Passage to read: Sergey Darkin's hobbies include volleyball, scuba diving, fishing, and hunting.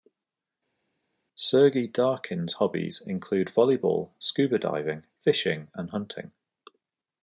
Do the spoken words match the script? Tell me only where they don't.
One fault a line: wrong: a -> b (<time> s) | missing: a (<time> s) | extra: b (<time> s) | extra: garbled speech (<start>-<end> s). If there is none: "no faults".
no faults